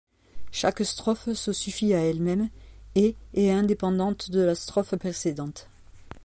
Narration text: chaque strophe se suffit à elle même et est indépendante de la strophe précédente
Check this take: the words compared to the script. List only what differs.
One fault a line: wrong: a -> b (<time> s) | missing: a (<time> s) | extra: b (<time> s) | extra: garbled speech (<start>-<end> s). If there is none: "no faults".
no faults